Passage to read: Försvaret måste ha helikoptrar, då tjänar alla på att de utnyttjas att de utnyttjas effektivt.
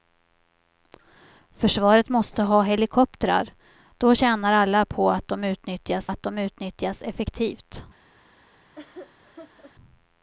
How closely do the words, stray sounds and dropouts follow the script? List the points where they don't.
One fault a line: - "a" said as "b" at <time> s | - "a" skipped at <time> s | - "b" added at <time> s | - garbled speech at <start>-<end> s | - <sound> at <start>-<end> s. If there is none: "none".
- laugh at 8.8-9.7 s